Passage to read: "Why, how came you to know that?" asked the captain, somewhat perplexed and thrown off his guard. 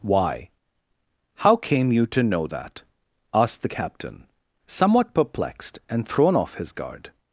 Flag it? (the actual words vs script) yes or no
no